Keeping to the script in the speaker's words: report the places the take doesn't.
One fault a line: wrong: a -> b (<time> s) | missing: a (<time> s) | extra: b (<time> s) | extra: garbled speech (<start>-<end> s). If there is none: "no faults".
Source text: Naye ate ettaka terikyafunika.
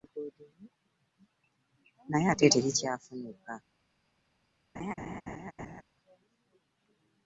missing: ettaka (2.4 s)